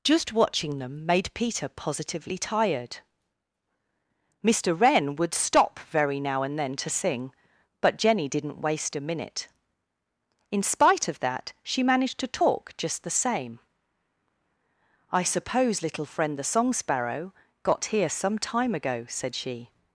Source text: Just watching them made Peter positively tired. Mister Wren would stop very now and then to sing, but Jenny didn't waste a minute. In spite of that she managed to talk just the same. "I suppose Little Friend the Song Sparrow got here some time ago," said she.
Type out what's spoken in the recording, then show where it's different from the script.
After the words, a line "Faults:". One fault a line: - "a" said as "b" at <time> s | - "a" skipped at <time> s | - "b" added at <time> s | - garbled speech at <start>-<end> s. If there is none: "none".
Just watching them made Peter positively tired. Mister Wren would stop very now and then to sing, but Jenny didn't waste a minute. In spite of that she managed to talk just the same. "I suppose Little Friend the Song Sparrow got here some time ago," said she.
Faults:
none